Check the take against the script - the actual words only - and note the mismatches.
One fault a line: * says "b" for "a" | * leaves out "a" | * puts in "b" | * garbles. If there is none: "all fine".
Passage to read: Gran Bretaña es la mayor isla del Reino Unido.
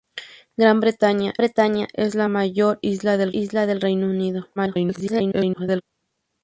* puts in "Bretaña"
* puts in "isla del"
* garbles